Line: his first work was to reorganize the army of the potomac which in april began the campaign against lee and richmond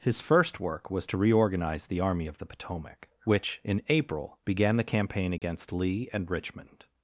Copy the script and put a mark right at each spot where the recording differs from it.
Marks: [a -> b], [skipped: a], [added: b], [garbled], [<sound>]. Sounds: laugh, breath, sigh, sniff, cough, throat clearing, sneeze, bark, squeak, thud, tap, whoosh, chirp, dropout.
his first work was to reorganize the army of the potomac which in april began the campaign against [dropout] lee and richmond